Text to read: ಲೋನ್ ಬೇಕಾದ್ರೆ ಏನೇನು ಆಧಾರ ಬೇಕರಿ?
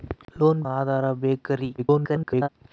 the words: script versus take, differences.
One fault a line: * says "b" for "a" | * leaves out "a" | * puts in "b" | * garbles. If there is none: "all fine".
* leaves out "ಬೇಕಾದ್ರೆ ಏನೇನು"
* garbles